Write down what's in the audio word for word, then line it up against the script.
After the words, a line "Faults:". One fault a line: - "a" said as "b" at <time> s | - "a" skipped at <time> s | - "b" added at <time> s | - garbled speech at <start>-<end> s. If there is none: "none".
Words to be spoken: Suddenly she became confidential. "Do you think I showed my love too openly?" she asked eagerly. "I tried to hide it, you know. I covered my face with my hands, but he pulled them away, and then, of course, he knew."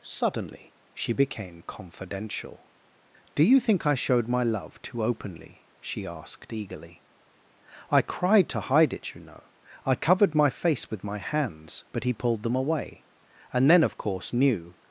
Suddenly she became confidential. "Do you think I showed my love too openly?" she asked eagerly. "I cried to hide it, you know. I covered my face with my hands, but he pulled them away, and then, of course, knew."
Faults:
- "tried" said as "cried" at 8.0 s
- "he" skipped at 14.3 s